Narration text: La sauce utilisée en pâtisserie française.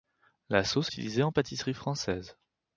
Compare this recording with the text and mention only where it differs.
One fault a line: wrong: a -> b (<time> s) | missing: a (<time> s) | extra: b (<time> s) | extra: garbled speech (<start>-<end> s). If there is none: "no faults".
no faults